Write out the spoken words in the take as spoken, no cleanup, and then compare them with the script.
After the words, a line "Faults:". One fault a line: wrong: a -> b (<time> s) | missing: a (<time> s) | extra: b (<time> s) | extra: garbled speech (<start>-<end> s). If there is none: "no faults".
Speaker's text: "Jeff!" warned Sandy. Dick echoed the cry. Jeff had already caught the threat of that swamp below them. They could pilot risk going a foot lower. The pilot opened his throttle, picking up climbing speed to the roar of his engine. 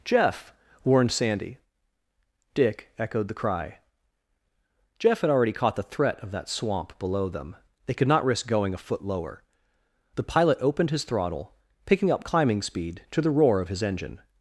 "Jeff!" warned Sandy. Dick echoed the cry. Jeff had already caught the threat of that swamp below them. They could not risk going a foot lower. The pilot opened his throttle, picking up climbing speed to the roar of his engine.
Faults:
wrong: pilot -> not (8.1 s)